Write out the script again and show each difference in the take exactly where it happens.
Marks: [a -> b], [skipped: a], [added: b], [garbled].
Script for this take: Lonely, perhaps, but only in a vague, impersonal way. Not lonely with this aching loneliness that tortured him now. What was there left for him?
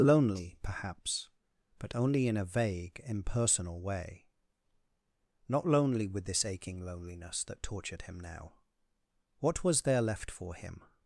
Lonely, perhaps, but only in a vague, impersonal way. Not lonely with this aching loneliness that tortured him now. What was there left for him?